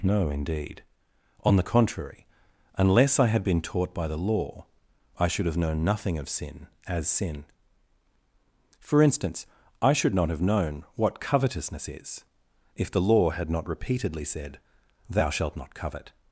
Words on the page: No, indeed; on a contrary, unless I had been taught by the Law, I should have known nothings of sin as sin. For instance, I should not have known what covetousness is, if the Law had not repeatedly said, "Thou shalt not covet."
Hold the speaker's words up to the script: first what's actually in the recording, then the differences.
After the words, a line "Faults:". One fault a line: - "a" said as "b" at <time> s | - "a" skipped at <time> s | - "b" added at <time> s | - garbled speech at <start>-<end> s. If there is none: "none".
No, indeed; on the contrary, unless I had been taught by the Law, I should have known nothing of sin as sin. For instance, I should not have known what covetousness is, if the Law had not repeatedly said, "Thou shalt not covet."
Faults:
- "a" said as "the" at 1.6 s
- "nothings" said as "nothing" at 5.8 s